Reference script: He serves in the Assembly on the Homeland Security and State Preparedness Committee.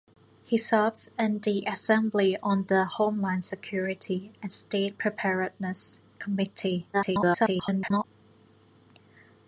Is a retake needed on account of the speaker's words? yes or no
yes